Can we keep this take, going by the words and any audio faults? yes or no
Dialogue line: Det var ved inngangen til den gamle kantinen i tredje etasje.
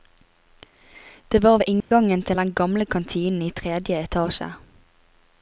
no